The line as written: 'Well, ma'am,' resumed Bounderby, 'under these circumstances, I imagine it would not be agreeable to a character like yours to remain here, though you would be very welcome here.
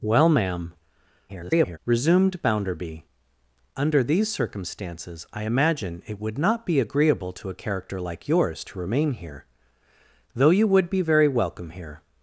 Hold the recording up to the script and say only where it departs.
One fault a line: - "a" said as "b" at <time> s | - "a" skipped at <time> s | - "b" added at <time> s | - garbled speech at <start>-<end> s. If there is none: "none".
- garbled speech at 1.3-1.8 s